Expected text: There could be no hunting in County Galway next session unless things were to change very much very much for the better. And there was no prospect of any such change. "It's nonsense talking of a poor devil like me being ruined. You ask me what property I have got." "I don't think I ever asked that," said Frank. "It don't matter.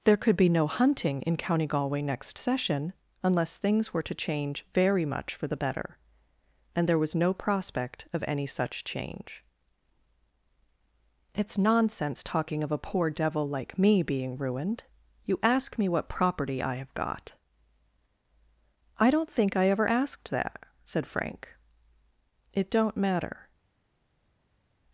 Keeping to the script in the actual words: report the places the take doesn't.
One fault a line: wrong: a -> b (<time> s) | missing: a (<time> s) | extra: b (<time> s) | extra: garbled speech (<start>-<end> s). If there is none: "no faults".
missing: very much (5.3 s)